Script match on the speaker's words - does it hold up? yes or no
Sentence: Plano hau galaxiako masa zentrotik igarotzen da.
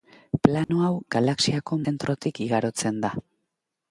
no